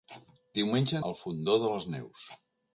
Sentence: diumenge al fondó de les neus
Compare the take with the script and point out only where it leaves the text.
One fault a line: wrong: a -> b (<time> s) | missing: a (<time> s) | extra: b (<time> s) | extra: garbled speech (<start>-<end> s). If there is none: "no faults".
no faults